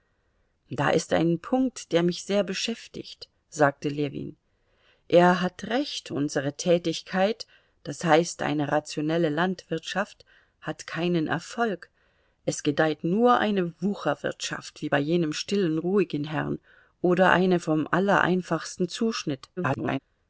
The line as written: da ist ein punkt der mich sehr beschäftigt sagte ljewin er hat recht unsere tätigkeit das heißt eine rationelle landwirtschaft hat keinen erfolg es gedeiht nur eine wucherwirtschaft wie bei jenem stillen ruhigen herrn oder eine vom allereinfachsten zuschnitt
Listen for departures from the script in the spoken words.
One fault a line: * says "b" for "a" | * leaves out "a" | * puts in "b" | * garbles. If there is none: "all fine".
* garbles